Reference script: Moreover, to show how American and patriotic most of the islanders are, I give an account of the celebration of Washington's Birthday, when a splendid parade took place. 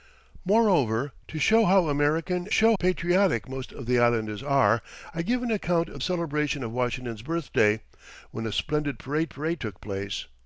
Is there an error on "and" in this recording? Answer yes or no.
yes